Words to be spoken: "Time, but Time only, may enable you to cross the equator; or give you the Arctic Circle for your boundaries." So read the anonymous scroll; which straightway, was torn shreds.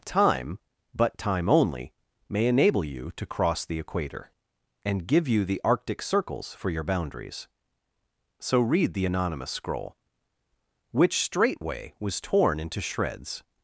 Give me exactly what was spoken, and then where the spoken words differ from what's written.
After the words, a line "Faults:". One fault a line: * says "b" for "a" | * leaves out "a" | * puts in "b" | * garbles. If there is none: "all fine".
"Time, but Time only, may enable you to cross the equator; and give you the Arctic Circles for your boundaries." So read the anonymous scroll; which straightway, was torn into shreds.
Faults:
* says "and" for "or"
* says "Circles" for "Circle"
* puts in "into"